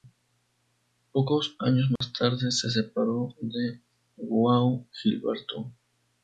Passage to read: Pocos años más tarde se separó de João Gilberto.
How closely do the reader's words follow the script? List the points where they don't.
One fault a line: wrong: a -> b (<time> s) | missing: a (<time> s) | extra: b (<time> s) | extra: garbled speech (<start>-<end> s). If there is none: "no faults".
no faults